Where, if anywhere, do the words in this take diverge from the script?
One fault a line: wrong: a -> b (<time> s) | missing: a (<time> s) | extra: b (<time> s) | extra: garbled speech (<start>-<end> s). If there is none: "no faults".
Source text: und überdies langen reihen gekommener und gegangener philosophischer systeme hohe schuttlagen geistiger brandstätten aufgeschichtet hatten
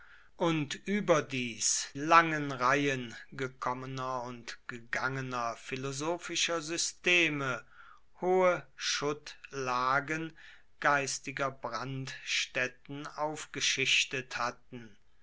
no faults